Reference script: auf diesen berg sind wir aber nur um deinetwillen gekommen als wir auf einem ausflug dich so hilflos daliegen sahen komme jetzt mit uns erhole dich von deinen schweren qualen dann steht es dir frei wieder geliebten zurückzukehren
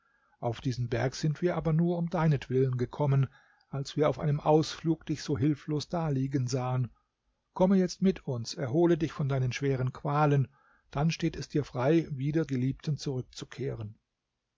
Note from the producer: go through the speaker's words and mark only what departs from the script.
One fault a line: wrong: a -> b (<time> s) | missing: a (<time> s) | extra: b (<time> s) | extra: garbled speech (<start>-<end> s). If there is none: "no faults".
no faults